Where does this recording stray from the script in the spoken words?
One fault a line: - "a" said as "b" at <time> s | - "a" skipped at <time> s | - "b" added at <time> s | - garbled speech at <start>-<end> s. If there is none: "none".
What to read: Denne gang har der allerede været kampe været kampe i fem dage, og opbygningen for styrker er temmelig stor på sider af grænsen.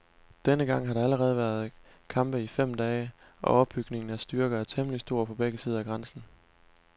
- "været kampe" skipped at 2.4 s
- "for" said as "af" at 4.1 s
- "begge" added at 5.3 s